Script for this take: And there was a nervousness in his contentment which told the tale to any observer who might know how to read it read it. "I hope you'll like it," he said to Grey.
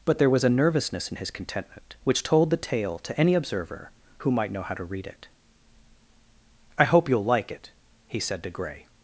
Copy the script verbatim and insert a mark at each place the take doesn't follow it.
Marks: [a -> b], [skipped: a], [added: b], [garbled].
[And -> But] there was a nervousness in his contentment which told the tale to any observer who might know how to read it [skipped: read it.] "I hope you'll like it," he said to Grey.